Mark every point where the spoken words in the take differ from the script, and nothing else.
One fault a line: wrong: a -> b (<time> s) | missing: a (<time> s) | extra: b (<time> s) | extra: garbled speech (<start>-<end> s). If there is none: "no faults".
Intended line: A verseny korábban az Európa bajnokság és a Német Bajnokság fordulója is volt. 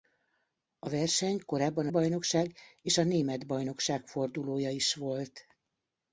missing: az Európa (1.9 s)